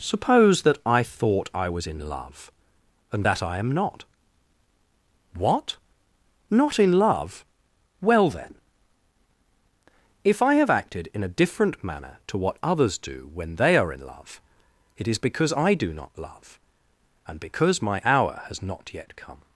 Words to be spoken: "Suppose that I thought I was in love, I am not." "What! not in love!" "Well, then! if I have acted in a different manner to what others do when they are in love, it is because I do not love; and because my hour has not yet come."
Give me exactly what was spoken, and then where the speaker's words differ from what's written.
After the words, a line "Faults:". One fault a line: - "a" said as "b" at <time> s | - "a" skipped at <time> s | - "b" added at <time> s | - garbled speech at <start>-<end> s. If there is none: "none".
"Suppose that I thought I was in love, and that I am not." "What! not in love!" "Well, then! if I have acted in a different manner to what others do when they are in love, it is because I do not love; and because my hour has not yet come."
Faults:
- "and that" added at 3.1 s